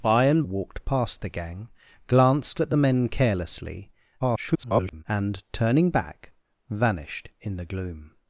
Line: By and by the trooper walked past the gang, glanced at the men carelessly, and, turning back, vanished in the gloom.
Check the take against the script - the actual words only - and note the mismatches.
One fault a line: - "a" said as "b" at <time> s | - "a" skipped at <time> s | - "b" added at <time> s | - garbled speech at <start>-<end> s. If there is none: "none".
- "by the trooper" skipped at 0.4 s
- garbled speech at 4.2-5.0 s